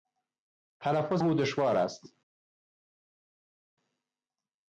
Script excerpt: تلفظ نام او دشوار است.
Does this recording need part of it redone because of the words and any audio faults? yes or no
yes